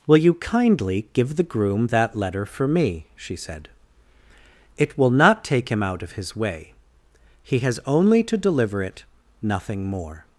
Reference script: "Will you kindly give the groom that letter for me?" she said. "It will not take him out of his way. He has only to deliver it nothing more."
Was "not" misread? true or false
false